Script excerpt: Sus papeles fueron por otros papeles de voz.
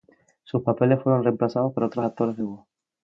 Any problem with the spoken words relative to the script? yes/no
yes